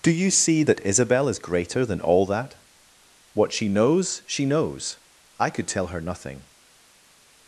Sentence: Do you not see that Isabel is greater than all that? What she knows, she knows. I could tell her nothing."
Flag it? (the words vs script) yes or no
yes